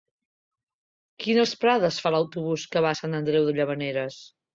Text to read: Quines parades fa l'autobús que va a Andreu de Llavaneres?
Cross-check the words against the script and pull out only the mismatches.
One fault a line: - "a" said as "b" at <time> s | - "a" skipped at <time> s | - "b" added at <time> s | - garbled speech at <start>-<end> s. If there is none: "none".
- "Sant" added at 3.0 s